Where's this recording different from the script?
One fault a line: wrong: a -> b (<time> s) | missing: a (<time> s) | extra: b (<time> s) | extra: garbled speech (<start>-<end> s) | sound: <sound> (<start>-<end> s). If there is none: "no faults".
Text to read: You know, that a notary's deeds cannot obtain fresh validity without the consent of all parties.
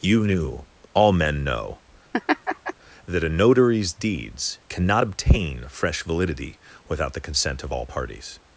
extra: knew all men (0.2 s)
sound: laugh (2.1-2.7 s)